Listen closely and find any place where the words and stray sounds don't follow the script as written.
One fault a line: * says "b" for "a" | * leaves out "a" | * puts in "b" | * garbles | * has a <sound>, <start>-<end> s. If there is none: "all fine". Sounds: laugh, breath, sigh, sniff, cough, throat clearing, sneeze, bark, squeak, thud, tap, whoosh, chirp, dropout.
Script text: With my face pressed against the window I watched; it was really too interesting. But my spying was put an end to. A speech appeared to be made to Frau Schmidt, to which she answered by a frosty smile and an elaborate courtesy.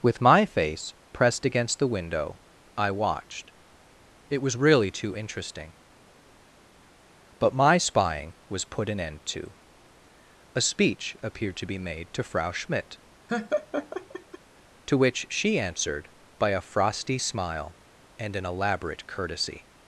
* has a laugh, 13.3-14.4 s